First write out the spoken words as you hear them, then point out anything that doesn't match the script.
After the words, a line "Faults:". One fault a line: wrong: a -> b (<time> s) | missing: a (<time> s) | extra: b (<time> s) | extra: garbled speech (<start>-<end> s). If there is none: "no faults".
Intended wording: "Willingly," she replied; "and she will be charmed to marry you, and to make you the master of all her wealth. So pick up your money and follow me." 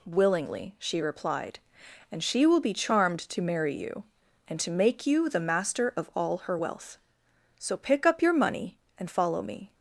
"Willingly," she replied; "and she will be charmed to marry you, and to make you the master of all her wealth. So pick up your money and follow me."
Faults:
no faults